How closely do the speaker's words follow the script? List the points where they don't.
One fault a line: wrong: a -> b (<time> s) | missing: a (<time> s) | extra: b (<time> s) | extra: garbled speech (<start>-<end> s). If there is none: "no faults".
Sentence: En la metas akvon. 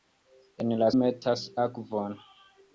no faults